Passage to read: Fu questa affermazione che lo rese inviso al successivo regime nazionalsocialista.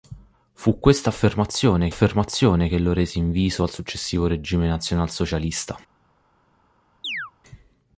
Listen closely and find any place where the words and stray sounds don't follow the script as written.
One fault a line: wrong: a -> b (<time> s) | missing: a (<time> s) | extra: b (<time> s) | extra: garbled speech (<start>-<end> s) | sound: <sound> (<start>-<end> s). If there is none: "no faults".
extra: affermazione (1.9 s)
sound: chirp (7.0-7.3 s)